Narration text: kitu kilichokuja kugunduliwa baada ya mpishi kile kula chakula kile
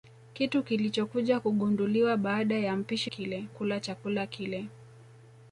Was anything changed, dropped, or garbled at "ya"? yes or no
no